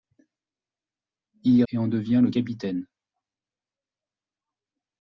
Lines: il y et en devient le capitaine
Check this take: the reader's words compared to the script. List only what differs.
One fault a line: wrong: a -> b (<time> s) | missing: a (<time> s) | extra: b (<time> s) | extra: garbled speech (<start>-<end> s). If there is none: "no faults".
no faults